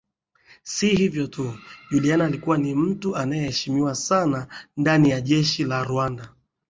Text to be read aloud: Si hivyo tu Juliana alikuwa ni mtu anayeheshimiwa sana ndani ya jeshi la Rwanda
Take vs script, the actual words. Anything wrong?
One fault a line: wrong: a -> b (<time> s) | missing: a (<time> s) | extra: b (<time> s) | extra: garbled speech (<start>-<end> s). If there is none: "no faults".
no faults